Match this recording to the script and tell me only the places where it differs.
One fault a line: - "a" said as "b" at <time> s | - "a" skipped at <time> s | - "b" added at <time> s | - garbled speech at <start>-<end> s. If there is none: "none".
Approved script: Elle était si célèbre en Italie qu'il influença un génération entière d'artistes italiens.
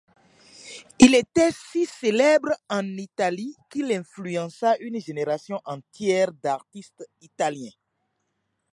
- "Elle" said as "Il" at 1.0 s
- "un" said as "une" at 4.8 s